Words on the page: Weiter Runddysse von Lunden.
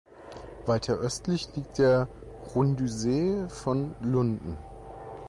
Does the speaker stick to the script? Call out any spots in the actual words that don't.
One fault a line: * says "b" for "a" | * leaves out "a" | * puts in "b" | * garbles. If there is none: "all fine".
* puts in "östlich liegt der"